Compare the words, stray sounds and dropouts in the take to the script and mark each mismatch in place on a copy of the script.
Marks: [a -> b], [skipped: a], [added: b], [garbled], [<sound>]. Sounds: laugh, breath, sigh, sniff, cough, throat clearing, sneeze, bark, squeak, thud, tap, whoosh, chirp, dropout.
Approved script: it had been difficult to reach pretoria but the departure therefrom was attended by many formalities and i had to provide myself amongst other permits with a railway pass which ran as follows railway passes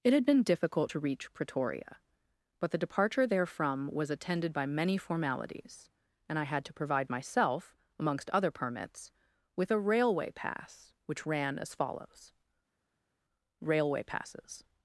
it had been difficult to reach pretoria but the departure therefrom was attended by many formalities and i had to provide myself amongst other permits with a railway pass which ran as follows railway passes